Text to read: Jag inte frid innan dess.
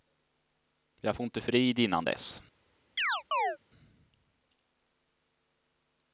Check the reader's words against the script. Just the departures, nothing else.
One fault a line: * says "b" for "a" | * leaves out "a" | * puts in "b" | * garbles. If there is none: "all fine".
* puts in "får"